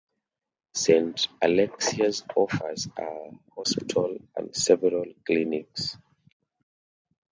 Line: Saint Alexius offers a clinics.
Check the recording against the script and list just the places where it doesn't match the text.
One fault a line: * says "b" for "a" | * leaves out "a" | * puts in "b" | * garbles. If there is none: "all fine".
* puts in "hospital and several"